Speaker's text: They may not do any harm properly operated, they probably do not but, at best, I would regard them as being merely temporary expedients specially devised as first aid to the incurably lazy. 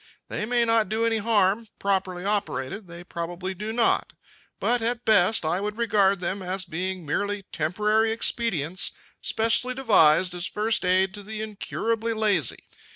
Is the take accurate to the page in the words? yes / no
yes